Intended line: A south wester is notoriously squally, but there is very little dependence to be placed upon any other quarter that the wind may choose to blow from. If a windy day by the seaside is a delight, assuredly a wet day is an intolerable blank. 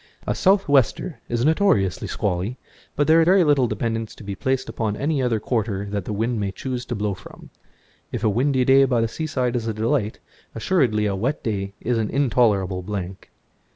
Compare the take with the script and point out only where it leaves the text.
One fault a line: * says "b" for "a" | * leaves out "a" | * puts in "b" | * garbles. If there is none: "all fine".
* leaves out "is"